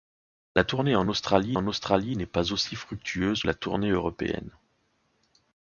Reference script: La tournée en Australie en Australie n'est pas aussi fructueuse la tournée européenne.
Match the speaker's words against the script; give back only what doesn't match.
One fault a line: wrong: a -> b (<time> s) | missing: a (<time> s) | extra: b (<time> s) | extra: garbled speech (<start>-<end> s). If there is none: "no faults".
no faults